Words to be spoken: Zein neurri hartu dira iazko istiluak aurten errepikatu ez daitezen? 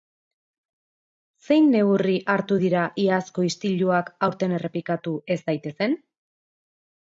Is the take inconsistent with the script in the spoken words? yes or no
no